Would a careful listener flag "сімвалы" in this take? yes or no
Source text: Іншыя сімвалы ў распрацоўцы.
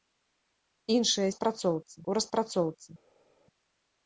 yes